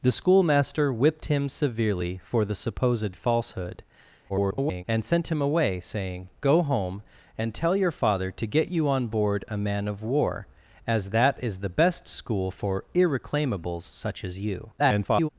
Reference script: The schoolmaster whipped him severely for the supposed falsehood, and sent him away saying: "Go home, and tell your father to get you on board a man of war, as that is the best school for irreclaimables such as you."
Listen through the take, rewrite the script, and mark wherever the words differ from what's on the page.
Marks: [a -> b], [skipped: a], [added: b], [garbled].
The schoolmaster whipped him severely for the supposed falsehood, [garbled] and sent him away saying: "Go home, and tell your father to get you on board a man of war, as that is the best school for irreclaimables such as you." [garbled]